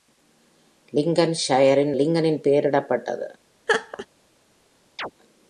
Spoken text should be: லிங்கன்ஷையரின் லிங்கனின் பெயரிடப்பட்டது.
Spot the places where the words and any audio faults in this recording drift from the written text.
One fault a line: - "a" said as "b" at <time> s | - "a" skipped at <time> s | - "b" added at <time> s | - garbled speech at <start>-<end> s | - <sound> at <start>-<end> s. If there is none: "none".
- laugh at 3.7-4.1 s
- chirp at 5.0-5.1 s